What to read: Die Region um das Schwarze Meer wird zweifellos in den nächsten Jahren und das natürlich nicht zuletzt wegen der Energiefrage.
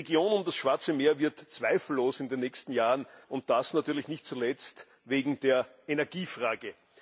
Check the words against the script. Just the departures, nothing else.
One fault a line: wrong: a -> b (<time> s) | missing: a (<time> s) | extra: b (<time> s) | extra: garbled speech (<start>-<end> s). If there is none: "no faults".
no faults